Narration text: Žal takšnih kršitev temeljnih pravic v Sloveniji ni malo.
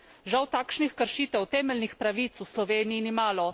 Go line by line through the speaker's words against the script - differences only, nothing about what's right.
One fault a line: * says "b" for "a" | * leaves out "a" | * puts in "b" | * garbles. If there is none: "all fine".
all fine